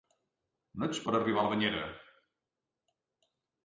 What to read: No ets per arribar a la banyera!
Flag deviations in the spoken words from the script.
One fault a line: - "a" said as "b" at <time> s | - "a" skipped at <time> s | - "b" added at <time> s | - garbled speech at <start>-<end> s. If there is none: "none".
none